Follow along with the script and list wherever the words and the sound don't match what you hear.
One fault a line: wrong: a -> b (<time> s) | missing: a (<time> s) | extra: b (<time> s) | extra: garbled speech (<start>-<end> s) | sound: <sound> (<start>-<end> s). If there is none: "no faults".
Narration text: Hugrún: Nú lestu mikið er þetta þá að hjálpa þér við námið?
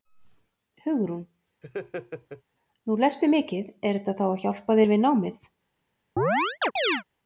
sound: laugh (1.6-2.4 s)
sound: chirp (6.2-7.0 s)